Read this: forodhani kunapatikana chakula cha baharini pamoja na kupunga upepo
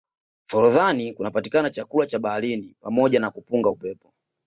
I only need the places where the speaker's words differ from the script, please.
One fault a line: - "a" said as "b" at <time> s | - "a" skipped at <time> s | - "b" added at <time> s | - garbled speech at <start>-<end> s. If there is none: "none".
none